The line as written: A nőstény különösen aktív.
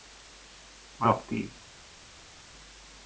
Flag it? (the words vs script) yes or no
yes